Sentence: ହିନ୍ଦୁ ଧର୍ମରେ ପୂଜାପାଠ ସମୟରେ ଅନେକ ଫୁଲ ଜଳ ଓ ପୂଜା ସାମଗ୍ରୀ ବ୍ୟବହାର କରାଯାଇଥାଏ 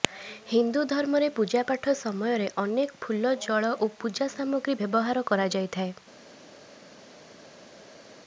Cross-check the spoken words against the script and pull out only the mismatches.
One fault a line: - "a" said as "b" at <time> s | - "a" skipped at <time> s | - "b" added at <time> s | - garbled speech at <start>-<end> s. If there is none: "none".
none